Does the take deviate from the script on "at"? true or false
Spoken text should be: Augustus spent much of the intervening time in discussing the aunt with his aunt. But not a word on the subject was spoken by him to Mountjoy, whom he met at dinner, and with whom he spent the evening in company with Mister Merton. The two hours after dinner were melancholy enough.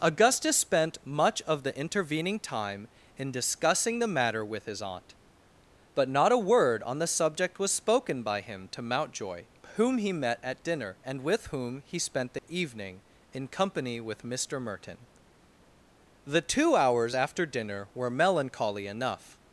false